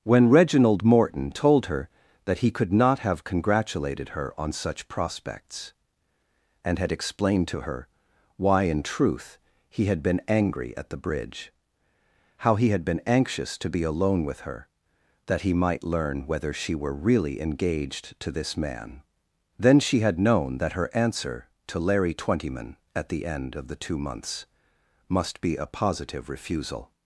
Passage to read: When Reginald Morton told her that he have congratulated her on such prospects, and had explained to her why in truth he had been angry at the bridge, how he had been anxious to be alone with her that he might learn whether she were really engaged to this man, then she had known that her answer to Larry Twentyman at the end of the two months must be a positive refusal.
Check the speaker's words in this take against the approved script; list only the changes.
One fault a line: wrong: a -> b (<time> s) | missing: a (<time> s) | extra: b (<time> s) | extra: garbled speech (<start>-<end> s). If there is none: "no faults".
extra: could not (2.5 s)